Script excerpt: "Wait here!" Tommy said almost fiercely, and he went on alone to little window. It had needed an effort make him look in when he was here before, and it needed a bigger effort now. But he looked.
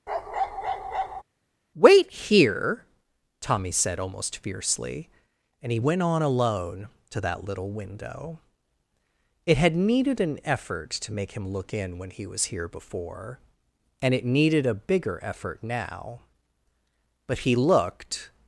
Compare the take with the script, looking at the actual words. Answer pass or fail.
fail